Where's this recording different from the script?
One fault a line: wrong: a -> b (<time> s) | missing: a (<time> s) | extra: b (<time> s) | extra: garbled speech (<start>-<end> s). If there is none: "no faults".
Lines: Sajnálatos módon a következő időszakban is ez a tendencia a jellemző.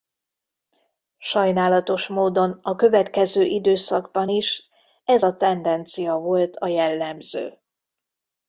extra: volt (6.1 s)